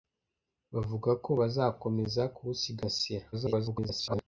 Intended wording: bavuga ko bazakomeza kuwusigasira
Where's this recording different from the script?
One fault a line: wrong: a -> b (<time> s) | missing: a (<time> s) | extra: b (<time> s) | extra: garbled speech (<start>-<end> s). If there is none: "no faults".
extra: garbled speech (3.3-4.2 s)